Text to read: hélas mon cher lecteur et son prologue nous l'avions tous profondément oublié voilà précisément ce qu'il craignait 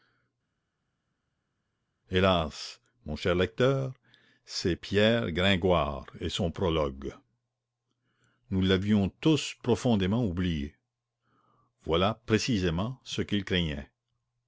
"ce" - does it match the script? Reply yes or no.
yes